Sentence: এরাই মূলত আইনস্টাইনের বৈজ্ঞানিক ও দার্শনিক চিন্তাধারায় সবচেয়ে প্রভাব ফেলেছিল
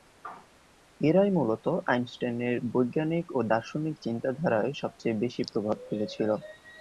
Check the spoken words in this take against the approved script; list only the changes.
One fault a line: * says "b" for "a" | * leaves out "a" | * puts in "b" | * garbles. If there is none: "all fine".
* puts in "বেশি"